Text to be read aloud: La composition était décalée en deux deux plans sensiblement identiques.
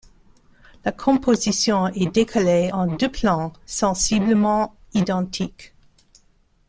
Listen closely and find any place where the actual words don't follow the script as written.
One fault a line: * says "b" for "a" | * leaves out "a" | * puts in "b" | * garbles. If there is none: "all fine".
* says "est" for "était"
* leaves out "deux"